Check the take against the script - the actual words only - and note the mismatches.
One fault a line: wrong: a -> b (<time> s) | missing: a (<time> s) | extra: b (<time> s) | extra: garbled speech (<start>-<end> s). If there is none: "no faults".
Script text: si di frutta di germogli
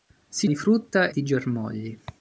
no faults